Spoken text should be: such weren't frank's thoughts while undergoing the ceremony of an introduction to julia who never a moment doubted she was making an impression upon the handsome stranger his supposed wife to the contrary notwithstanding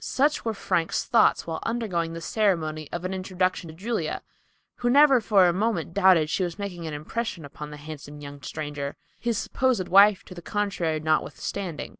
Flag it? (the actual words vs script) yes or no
yes